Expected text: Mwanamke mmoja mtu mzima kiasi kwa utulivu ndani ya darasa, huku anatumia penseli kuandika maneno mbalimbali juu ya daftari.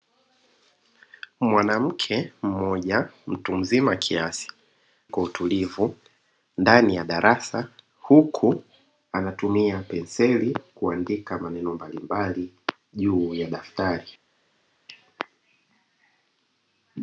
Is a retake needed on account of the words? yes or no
no